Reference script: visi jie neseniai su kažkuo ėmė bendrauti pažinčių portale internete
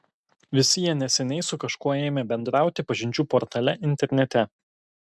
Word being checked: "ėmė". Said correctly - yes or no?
yes